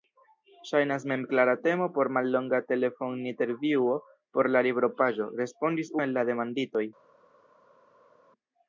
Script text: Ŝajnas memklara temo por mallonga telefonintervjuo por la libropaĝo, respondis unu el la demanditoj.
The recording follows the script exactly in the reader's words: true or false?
false